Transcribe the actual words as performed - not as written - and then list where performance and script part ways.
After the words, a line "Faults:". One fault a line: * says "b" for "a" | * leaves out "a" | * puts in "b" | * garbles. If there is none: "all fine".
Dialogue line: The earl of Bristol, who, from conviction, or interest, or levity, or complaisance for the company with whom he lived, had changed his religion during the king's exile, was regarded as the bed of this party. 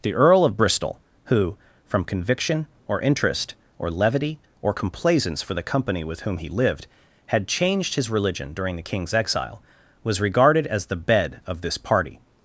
The earl of Bristol, who, from conviction, or interest, or levity, or complaisance for the company with whom he lived, had changed his religion during the king's exile, was regarded as the bed of this party.
Faults:
all fine